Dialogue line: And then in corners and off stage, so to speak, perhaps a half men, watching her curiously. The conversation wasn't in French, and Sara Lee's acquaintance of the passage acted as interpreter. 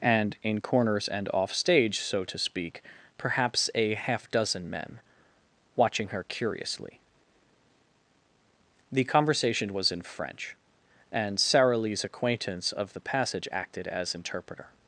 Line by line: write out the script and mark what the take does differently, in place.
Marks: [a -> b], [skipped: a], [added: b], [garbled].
And [skipped: then] in corners and off stage, so to speak, perhaps a half [added: dozen] men, watching her curiously. The conversation [wasn't -> was] in French, and Sara Lee's acquaintance of the passage acted as interpreter.